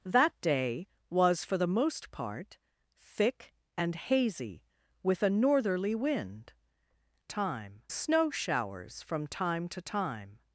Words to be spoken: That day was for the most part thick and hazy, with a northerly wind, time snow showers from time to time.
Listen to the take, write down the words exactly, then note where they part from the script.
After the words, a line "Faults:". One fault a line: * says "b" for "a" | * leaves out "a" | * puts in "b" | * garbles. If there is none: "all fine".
That day was for the most part thick and hazy, with a northerly wind, time snow showers from time to time.
Faults:
all fine